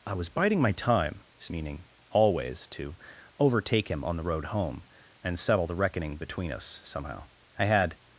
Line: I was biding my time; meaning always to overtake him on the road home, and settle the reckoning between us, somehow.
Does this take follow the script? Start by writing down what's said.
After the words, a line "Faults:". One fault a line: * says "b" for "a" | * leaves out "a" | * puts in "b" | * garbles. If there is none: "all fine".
I was biding my time; meaning always to overtake him on the road home, and settle the reckoning between us, somehow. I had
Faults:
* puts in "I had"